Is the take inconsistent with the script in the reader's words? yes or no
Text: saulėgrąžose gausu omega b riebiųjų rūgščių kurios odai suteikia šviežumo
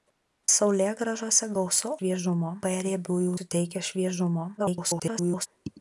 yes